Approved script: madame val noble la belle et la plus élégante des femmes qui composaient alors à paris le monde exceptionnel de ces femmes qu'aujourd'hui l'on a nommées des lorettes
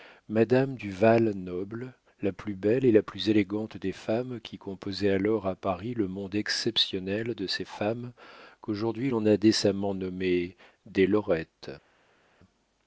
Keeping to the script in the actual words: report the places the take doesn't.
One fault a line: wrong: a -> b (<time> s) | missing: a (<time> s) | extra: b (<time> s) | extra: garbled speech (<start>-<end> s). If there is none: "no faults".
extra: du (0.8 s)
extra: plus (2.3 s)
extra: décemment (9.4 s)